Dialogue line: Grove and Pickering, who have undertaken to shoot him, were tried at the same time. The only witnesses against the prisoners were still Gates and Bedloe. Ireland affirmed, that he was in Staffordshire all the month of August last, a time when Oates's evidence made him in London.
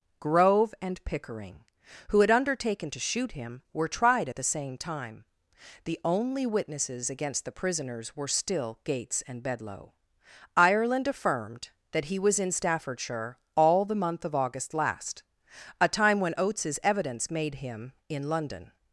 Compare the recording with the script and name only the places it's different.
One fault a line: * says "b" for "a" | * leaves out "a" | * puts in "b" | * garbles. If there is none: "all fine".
* says "had" for "have"